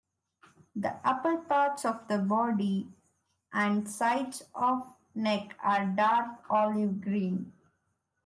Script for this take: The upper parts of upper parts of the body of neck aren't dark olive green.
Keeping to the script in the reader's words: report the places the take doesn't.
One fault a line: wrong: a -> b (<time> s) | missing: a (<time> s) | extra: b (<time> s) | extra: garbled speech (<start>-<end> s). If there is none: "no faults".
wrong: upper parts of the body -> the body and sides (2.1 s)
wrong: aren't -> are (5.6 s)